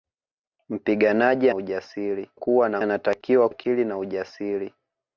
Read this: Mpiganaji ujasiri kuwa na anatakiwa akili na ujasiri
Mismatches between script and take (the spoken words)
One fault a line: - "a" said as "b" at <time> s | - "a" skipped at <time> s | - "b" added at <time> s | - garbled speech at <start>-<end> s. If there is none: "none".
none